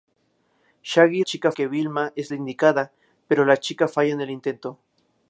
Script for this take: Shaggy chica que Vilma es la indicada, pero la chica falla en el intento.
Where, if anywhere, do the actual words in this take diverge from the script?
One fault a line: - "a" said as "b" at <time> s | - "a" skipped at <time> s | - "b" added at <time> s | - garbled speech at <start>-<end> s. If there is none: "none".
none